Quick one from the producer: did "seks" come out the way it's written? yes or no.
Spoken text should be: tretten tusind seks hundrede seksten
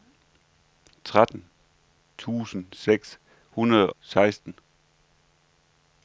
yes